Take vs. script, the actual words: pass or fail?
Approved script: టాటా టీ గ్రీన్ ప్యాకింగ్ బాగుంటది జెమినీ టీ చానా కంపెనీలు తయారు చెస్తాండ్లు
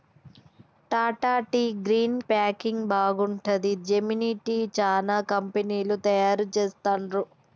pass